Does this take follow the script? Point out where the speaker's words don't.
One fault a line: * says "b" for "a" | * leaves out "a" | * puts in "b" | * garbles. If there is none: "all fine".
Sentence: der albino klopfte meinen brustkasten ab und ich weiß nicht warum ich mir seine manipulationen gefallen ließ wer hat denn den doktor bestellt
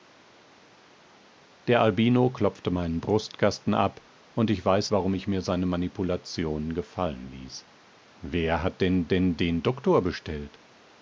* leaves out "nicht"
* puts in "denn"